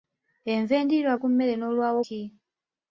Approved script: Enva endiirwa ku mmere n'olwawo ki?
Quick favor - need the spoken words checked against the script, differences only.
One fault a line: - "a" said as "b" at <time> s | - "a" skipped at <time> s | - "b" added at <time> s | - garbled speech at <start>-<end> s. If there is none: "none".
none